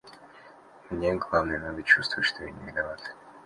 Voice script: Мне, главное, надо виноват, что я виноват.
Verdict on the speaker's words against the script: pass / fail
fail